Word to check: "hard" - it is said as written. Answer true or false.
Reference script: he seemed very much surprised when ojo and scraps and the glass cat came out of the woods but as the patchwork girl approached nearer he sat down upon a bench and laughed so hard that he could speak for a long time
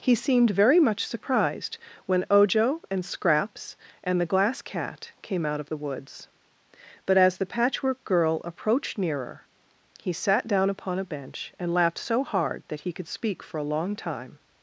true